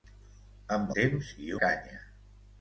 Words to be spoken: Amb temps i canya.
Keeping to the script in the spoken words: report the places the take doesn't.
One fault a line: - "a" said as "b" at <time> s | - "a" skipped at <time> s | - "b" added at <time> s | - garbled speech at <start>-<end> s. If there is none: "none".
none